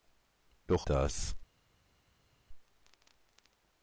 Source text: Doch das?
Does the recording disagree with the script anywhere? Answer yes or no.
no